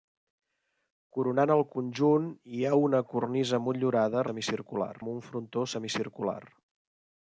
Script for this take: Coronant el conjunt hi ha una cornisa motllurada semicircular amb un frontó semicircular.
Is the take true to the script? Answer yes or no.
yes